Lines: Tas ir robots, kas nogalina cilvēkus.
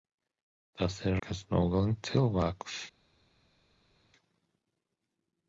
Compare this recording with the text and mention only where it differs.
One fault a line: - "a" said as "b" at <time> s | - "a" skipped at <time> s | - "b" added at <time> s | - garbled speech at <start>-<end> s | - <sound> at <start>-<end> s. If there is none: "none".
- "robots" skipped at 1.2 s